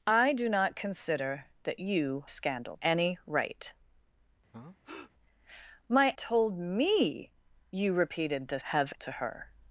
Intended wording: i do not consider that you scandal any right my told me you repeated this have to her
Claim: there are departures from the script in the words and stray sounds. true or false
true